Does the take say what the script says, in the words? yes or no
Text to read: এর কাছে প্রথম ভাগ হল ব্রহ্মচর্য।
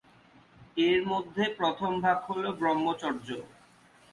no